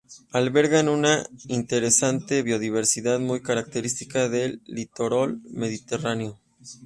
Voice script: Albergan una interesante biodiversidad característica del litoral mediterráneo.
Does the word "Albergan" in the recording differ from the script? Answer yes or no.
no